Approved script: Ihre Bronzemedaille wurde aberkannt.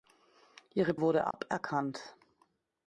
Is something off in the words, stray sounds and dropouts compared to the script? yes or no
yes